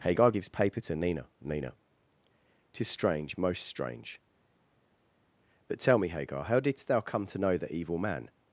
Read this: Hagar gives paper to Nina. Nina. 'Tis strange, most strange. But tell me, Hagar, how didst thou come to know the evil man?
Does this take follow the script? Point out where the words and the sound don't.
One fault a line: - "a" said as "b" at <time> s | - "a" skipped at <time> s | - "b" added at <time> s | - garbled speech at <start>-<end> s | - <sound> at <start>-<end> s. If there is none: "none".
none